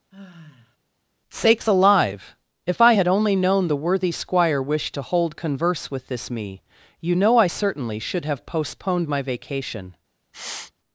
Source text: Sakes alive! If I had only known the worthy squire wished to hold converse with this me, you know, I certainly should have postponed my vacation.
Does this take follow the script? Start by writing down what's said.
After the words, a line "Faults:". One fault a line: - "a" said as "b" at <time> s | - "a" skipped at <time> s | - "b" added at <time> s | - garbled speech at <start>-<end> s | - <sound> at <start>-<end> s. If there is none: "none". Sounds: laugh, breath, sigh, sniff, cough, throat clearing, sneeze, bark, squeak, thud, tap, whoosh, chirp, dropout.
Sakes alive! If I had only known the worthy squire wished to hold converse with this me, you know, I certainly should have postponed my vacation.
Faults:
- sigh at 0.1-0.8 s
- sniff at 10.3-10.7 s